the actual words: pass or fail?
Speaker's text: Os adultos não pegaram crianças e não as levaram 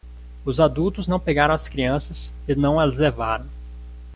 fail